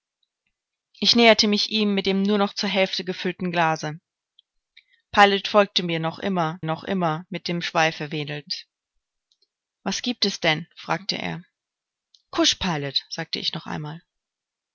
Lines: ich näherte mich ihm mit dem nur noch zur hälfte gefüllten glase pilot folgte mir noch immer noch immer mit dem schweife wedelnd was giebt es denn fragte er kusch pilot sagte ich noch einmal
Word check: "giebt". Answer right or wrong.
right